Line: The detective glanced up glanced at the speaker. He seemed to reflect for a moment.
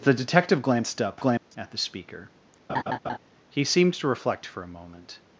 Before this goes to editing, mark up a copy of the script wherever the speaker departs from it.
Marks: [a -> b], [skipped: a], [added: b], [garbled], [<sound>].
The detective glanced up glanced [dropout] at the speaker. [laugh] He seemed to reflect for a moment.